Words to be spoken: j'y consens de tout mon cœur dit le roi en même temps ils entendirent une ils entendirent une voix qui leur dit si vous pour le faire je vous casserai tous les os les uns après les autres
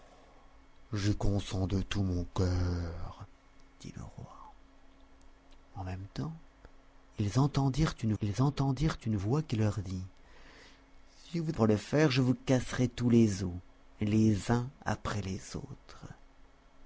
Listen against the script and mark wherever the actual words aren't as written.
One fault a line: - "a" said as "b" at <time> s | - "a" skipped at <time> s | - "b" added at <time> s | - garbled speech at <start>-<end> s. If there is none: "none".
none